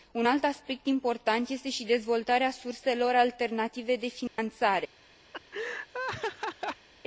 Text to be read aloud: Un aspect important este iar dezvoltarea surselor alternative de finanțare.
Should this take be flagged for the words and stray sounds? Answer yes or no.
yes